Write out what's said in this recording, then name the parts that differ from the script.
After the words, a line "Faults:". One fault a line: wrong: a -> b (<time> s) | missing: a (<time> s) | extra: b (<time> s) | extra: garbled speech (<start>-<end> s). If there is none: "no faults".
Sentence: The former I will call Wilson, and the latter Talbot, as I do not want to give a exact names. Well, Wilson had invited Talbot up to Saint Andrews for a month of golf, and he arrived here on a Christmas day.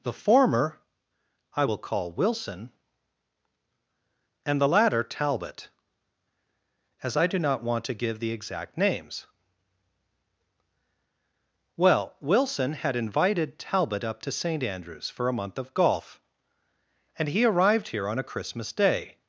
The former I will call Wilson, and the latter Talbot, as I do not want to give the exact names. Well, Wilson had invited Talbot up to Saint Andrews for a month of golf, and he arrived here on a Christmas day.
Faults:
wrong: a -> the (8.2 s)